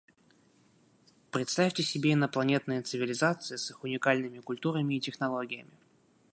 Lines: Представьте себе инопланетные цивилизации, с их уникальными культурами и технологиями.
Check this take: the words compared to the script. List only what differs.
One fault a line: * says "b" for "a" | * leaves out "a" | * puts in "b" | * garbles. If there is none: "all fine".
all fine